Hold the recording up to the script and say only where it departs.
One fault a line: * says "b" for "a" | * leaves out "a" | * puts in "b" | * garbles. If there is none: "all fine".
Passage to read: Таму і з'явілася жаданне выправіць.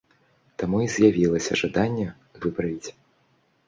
all fine